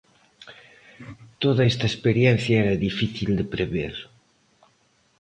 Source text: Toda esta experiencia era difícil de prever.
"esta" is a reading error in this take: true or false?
false